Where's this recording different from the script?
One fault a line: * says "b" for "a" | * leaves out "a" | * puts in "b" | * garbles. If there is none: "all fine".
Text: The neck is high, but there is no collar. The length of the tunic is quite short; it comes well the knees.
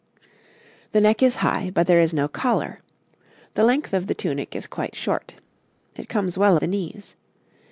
all fine